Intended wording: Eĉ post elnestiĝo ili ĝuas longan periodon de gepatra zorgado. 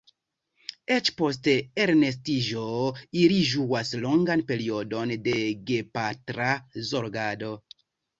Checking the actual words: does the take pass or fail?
pass